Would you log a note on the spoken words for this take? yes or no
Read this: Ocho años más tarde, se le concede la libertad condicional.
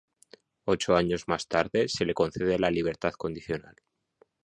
no